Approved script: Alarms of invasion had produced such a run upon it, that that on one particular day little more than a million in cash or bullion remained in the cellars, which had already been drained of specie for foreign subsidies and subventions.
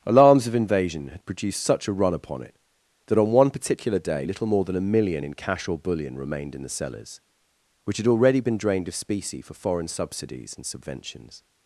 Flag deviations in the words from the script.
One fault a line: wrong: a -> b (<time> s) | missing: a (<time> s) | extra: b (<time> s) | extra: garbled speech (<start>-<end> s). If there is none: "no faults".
missing: that (3.2 s)